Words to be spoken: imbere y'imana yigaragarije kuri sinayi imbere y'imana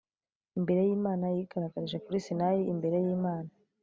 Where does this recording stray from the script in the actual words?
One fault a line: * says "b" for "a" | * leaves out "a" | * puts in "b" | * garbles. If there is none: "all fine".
all fine